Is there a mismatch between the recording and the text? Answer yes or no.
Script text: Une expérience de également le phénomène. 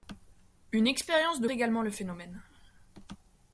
no